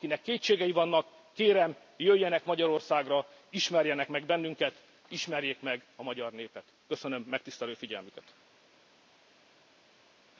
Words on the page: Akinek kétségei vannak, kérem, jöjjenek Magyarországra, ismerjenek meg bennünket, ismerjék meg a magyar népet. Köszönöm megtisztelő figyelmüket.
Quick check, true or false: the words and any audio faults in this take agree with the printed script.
true